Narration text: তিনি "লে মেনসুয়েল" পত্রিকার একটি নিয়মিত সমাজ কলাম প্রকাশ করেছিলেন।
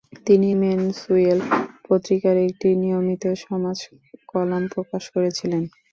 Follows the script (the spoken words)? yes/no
no